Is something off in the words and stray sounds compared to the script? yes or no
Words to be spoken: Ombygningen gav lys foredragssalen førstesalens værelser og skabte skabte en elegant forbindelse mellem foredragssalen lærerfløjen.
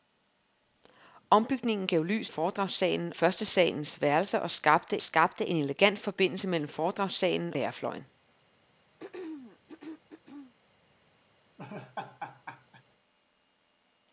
yes